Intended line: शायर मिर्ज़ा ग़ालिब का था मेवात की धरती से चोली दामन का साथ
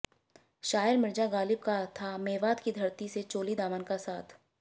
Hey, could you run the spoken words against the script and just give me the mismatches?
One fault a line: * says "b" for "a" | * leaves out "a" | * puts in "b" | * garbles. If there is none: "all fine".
all fine